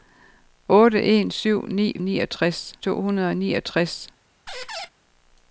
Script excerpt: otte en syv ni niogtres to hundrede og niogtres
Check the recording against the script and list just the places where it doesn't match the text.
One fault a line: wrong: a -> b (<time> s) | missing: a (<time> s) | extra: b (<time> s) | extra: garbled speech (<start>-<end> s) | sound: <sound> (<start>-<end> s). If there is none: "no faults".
sound: squeak (4.5-4.9 s)